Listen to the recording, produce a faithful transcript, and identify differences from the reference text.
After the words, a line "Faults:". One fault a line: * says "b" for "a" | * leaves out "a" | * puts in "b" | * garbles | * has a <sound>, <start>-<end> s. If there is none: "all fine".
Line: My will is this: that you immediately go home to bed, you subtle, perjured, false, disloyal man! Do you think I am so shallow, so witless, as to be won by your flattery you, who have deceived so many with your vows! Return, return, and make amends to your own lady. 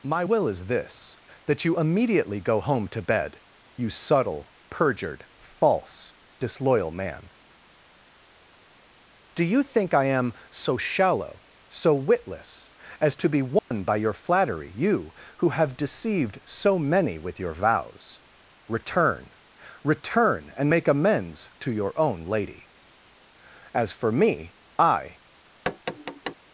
My will is this: that you immediately go home to bed, you subtle, perjured, false, disloyal man! Do you think I am so shallow, so witless, as to be won by your flattery you, who have deceived so many with your vows! Return, return, and make amends to your own lady. As for me, I
Faults:
* has a dropout, 13.6-13.7 s
* puts in "As for me I"
* has a tap, 25.7-26.4 s